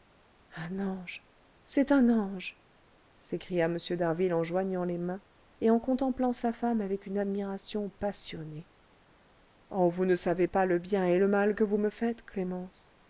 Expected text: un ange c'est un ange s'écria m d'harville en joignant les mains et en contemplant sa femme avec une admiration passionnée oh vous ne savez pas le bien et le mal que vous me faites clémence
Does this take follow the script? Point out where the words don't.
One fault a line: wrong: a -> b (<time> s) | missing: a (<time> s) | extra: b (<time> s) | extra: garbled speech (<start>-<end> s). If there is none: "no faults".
no faults